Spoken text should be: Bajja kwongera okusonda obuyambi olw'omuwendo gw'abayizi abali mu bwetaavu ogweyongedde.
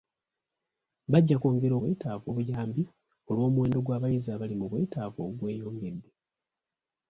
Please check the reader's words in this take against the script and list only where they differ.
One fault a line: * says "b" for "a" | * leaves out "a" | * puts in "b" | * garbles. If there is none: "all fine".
* says "bwetaavu" for "okusonda"